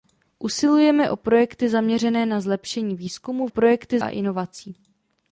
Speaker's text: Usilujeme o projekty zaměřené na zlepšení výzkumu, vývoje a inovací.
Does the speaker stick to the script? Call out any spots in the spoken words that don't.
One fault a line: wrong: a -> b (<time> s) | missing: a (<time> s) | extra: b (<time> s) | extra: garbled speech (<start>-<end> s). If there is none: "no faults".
wrong: vývoje -> projekty (3.5 s)